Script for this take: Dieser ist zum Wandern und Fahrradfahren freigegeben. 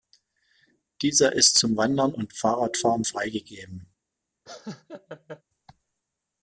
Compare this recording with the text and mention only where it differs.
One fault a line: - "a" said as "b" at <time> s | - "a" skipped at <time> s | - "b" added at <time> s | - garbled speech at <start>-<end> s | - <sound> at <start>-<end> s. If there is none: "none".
- laugh at 4.5-5.4 s